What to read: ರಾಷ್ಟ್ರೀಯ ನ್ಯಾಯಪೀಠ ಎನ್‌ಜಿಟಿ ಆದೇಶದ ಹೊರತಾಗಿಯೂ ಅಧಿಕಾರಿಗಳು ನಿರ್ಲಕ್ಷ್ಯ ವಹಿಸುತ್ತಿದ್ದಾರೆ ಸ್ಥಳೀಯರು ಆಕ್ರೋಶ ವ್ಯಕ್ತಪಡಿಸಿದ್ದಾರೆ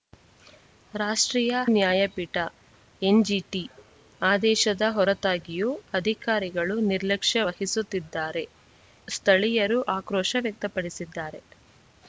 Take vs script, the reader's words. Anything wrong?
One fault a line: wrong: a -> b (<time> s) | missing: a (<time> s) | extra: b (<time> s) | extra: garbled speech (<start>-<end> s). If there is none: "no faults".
no faults